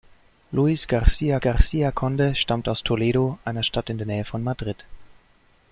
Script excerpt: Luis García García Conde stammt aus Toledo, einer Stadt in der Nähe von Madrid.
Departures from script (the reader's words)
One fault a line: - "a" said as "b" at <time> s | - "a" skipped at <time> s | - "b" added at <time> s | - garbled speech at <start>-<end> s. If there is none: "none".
none